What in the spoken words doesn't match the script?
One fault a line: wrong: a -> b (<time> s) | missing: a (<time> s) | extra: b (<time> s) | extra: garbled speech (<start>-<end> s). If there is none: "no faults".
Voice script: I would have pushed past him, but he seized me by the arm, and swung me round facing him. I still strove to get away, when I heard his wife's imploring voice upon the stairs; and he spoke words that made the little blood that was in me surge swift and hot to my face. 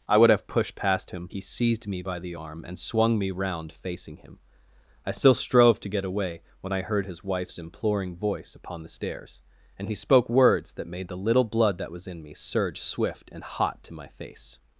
missing: but (1.3 s)